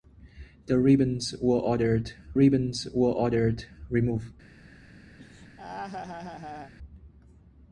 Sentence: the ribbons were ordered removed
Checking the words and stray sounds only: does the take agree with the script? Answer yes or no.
no